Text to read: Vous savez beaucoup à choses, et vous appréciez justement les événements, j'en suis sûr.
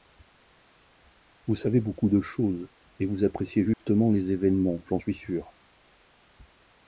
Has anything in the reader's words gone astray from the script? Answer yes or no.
yes